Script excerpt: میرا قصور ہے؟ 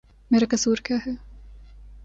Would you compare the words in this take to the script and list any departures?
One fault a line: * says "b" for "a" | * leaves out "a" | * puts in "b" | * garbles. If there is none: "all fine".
* puts in "کیا"